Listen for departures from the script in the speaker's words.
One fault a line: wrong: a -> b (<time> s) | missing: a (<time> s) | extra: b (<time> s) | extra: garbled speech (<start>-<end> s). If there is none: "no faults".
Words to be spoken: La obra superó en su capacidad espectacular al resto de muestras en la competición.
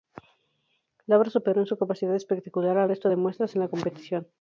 no faults